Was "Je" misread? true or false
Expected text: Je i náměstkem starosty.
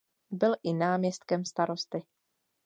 true